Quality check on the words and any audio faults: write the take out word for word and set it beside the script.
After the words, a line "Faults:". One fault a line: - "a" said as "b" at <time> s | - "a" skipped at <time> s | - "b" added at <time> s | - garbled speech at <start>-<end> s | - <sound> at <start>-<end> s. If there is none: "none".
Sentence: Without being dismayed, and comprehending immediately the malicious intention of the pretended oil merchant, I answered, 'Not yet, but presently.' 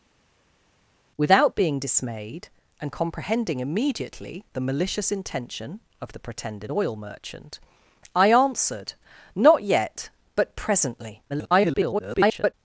Without being dismayed, and comprehending immediately the malicious intention of the pretended oil merchant, I answered, 'Not yet, but presently.' [garbled]
Faults:
- garbled speech at 11.3-12.5 s